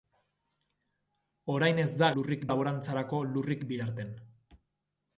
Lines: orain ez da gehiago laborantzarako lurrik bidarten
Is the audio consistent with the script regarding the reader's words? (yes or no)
no